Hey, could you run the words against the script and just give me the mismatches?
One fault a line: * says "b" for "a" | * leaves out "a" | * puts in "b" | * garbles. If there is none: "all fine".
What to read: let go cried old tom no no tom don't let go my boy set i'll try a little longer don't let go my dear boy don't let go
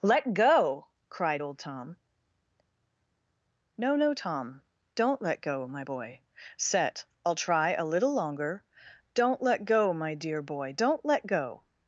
all fine